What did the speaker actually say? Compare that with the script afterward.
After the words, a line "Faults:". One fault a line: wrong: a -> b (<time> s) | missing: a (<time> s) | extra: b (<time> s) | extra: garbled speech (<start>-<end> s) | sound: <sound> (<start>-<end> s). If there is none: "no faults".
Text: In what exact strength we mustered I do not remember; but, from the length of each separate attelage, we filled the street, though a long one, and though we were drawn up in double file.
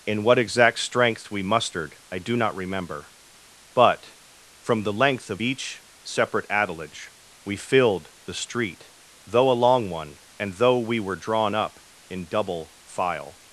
In what exact strength we mustered I do not remember; but, from the length of each separate attelage, we filled the street, though a long one, and though we were drawn up in double file.
Faults:
no faults